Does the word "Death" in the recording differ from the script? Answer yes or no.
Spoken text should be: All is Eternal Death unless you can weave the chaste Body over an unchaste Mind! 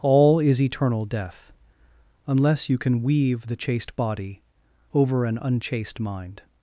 no